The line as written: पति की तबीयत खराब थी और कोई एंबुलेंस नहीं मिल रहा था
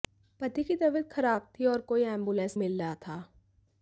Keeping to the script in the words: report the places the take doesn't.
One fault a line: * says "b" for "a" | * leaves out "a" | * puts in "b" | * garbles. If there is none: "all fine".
* leaves out "नहीं"